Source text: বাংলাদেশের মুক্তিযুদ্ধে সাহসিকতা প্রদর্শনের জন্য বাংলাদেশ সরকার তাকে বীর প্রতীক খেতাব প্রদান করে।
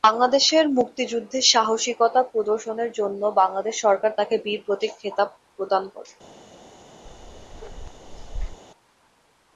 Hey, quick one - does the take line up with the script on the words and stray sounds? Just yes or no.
no